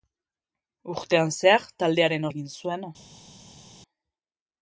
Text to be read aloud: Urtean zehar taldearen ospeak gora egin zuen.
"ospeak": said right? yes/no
no